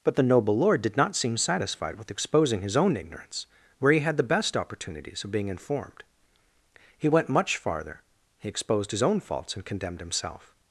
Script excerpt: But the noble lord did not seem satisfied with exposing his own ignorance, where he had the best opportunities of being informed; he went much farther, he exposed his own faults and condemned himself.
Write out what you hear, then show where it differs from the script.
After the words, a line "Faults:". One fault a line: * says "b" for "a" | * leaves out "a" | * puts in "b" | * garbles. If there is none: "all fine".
But the noble lord did not seem satisfied with exposing his own ignorance, where he had the best opportunities of being informed; he went much farther, he exposed his own faults and condemned himself.
Faults:
all fine